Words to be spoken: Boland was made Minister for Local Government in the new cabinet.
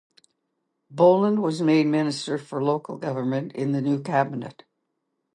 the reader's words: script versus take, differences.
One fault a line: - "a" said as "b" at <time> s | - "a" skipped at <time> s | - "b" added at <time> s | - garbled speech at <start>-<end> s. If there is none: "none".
none